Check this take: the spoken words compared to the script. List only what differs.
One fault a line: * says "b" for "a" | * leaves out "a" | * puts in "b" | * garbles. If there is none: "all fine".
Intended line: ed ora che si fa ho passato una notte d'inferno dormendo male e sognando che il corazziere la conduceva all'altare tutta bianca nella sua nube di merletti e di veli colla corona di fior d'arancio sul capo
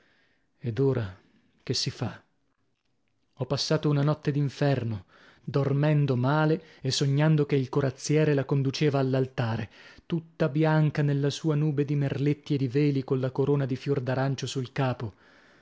all fine